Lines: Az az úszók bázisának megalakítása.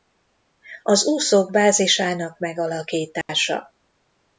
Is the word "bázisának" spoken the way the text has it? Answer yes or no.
yes